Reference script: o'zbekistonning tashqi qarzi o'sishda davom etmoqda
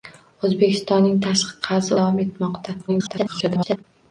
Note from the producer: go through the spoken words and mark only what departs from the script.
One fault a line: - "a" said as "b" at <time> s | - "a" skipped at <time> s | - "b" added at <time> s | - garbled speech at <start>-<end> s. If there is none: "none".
- "o'sishda" skipped at 2.0 s
- garbled speech at 2.9-3.8 s